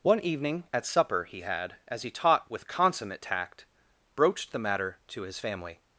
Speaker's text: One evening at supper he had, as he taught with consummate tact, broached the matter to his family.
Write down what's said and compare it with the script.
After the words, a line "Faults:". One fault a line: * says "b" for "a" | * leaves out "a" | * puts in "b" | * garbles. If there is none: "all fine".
One evening at supper he had, as he taught with consummate tact, broached the matter to his family.
Faults:
all fine